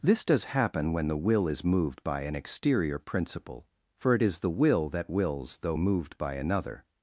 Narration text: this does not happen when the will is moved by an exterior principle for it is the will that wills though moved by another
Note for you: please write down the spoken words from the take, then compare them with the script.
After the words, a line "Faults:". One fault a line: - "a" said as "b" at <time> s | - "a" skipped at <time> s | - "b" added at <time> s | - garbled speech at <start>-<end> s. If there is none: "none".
this does happen when the will is moved by an exterior principle for it is the will that wills though moved by another
Faults:
- "not" skipped at 0.5 s